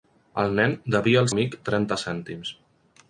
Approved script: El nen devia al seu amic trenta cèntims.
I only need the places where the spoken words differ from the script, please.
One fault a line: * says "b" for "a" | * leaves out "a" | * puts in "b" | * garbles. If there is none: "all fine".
* leaves out "seu"